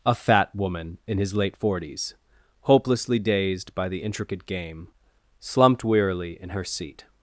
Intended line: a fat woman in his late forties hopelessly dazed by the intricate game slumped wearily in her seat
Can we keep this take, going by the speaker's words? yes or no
yes